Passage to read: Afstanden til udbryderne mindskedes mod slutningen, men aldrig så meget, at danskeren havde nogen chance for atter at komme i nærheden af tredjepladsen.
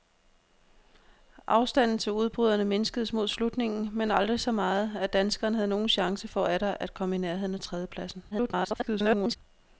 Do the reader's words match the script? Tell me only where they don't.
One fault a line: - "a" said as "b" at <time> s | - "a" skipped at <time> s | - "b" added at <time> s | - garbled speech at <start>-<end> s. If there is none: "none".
- garbled speech at 8.3-9.4 s